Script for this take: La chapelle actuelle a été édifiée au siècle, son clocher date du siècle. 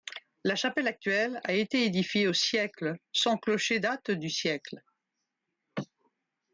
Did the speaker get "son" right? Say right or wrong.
right